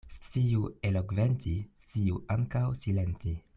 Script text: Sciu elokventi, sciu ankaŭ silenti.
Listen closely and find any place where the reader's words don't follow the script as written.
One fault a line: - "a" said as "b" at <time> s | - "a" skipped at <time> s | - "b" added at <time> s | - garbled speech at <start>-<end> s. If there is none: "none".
none